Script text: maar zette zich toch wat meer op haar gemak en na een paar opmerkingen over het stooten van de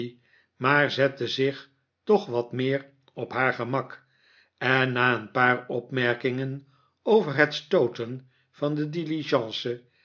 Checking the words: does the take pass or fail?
pass